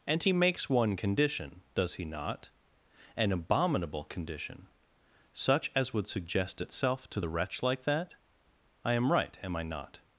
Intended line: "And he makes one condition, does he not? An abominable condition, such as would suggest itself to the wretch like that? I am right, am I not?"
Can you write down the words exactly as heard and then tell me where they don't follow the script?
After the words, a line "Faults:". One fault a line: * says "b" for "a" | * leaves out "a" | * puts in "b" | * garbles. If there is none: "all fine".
"And he makes one condition, does he not? An abominable condition, such as would suggest itself to the wretch like that? I am right, am I not?"
Faults:
all fine